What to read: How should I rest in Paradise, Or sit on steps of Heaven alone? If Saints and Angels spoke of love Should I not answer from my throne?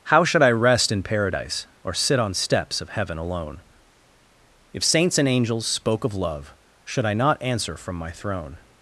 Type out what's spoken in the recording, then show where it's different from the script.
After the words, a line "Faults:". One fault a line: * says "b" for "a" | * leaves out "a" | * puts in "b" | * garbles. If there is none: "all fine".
How should I rest in Paradise, Or sit on steps of Heaven alone? If Saints and Angels spoke of love Should I not answer from my throne?
Faults:
all fine